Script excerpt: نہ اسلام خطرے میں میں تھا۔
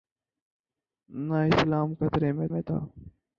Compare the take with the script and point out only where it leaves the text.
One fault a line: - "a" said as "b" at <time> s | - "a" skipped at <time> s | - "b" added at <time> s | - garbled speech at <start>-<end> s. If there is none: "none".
none